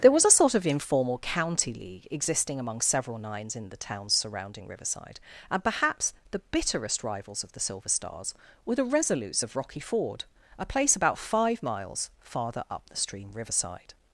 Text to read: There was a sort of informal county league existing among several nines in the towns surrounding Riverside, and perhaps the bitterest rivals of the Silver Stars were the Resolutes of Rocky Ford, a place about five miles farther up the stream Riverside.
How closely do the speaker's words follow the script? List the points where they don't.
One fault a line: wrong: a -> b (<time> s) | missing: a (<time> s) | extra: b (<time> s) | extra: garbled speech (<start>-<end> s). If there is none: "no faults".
no faults